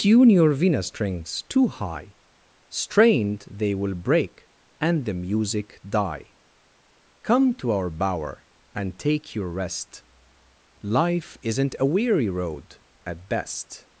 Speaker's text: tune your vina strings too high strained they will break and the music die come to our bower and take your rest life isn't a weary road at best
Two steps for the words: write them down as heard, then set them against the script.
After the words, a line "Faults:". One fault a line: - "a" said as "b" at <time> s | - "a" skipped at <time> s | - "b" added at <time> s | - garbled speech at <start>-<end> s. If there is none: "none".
tune your vina strings too high strained they will break and the music die come to our bower and take your rest life isn't a weary road at best
Faults:
none